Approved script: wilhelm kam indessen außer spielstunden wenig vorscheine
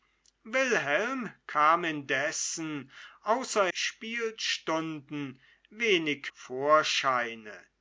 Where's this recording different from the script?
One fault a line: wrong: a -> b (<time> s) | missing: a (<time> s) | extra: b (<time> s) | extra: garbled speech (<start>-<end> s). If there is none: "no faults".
no faults